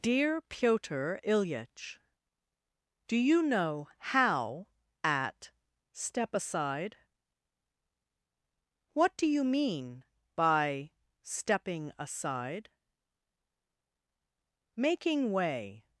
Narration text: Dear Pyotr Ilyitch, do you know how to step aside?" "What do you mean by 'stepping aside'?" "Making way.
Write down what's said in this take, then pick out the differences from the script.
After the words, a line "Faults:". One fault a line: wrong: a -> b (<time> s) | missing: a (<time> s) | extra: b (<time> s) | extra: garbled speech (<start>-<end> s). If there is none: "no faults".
Dear Pyotr Ilyitch, do you know how at step aside?" "What do you mean by 'stepping aside'?" "Making way.
Faults:
wrong: to -> at (5.0 s)